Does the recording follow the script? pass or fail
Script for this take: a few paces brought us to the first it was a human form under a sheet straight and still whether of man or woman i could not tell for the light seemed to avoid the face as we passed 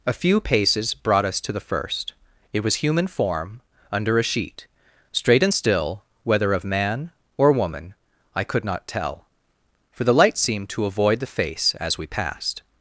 fail